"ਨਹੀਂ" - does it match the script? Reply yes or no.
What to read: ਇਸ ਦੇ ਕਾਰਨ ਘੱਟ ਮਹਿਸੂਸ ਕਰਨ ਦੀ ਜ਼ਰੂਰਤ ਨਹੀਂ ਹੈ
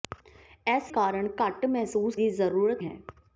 no